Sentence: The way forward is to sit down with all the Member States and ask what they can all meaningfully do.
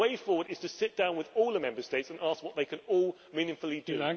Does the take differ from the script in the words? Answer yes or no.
no